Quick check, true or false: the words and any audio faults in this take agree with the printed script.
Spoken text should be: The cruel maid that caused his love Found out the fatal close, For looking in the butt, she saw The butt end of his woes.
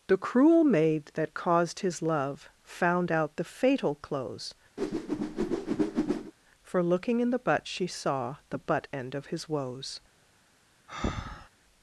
false